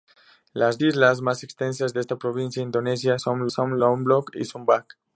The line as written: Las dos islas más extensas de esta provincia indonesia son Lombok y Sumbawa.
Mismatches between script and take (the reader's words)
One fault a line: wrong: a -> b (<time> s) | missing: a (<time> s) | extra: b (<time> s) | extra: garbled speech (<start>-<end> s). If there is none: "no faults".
missing: dos (0.8 s)
extra: son (3.5 s)